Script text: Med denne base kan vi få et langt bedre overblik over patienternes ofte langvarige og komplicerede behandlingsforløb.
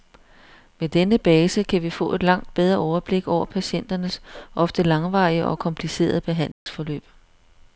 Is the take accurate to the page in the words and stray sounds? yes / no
no